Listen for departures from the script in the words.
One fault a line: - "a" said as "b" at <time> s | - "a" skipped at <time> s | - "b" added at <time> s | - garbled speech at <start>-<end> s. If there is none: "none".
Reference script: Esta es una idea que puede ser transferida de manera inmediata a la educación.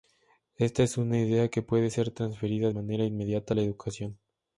- "de" skipped at 2.7 s